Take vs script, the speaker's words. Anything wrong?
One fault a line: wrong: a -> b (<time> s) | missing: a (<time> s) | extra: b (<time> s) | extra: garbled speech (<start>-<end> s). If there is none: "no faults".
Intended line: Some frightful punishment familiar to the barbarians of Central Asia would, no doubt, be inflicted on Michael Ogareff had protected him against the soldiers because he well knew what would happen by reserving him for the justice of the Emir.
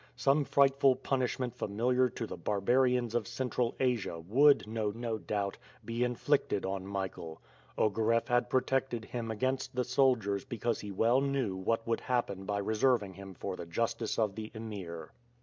extra: no (4.9 s)